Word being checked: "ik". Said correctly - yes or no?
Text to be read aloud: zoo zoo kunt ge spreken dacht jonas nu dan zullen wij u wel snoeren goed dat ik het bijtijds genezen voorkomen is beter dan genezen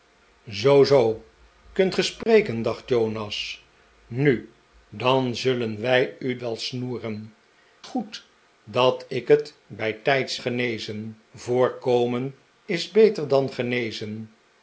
yes